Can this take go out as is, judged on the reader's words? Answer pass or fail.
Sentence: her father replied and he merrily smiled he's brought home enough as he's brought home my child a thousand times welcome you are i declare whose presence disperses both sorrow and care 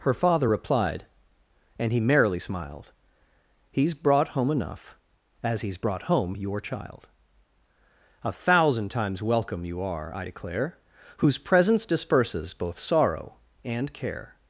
fail